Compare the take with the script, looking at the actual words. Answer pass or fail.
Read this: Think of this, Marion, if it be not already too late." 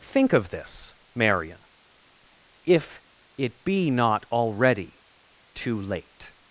pass